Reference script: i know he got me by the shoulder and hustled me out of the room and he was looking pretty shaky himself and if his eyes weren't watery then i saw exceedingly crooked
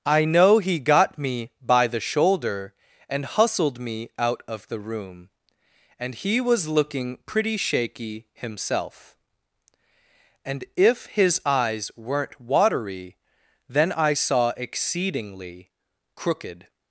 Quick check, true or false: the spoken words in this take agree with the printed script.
true